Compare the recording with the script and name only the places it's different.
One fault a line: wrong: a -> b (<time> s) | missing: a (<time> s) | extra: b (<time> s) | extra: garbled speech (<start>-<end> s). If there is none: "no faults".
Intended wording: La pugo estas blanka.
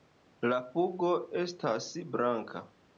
no faults